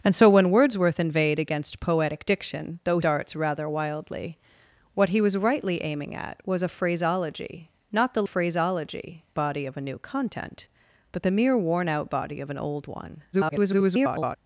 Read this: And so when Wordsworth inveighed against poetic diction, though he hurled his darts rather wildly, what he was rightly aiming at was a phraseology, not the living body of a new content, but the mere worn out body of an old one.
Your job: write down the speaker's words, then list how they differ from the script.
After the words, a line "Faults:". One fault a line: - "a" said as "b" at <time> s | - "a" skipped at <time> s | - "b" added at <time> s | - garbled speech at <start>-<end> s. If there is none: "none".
And so when Wordsworth inveighed against poetic diction, though darts rather wildly, what he was rightly aiming at was a phraseology, not the phraseology body of a new content, but the mere worn out body of an old one. [garbled]
Faults:
- "he hurled his" skipped at 3.0 s
- "living" said as "phraseology" at 8.2 s
- garbled speech at 13.3-14.4 s